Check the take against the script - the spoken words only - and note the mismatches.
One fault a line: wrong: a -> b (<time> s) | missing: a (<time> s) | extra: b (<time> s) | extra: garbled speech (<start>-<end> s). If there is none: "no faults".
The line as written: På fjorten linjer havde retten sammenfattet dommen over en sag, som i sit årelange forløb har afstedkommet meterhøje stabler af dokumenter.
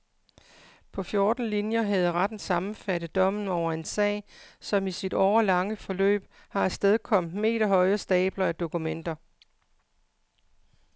no faults